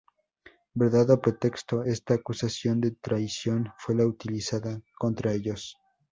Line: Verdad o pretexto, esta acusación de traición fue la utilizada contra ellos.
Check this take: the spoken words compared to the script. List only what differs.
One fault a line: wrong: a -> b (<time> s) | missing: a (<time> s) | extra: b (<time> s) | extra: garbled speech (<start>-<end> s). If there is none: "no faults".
no faults